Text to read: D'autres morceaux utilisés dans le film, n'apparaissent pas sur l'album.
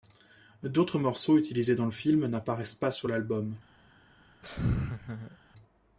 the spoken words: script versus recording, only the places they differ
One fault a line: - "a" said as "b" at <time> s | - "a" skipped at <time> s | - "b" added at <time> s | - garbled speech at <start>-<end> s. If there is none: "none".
none